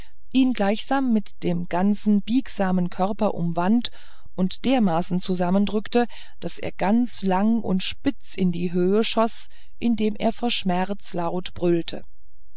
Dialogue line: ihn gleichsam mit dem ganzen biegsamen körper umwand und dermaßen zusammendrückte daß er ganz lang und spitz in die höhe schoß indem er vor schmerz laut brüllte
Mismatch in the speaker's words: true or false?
false